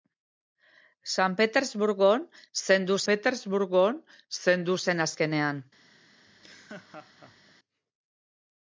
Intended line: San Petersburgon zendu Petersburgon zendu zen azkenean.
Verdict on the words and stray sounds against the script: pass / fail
fail